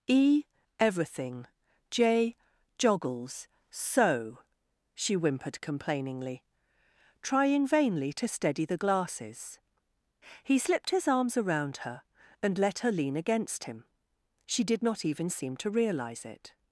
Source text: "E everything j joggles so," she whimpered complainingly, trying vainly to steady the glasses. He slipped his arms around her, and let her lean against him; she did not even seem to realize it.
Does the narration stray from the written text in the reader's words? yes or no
no